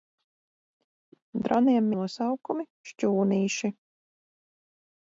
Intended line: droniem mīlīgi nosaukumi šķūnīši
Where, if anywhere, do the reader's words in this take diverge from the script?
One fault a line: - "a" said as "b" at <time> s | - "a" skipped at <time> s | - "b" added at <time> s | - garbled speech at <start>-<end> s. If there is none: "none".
- "mīlīgi" skipped at 1.9 s